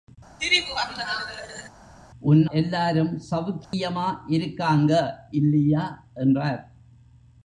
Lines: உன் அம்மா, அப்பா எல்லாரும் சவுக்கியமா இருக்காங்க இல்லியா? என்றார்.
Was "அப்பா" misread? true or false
true